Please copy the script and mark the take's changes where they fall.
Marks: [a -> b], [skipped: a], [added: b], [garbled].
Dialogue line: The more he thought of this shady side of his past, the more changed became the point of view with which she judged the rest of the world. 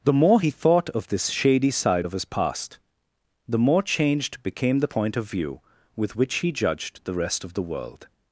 The more he thought of this shady side of his past, the more changed became the point of view with which [she -> he] judged the rest of the world.